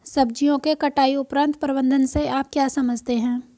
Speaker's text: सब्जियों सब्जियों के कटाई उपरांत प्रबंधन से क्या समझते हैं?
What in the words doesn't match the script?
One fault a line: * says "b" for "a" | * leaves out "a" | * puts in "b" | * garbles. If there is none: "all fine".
* leaves out "सब्जियों"
* puts in "आप"